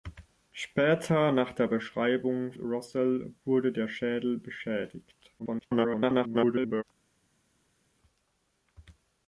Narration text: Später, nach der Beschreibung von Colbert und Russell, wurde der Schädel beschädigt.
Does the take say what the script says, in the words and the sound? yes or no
no